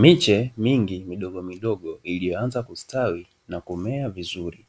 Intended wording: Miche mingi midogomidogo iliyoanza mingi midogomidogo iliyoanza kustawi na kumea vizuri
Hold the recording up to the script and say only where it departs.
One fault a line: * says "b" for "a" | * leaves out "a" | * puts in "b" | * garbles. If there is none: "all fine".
* leaves out "mingi midogomidogo iliyoanza"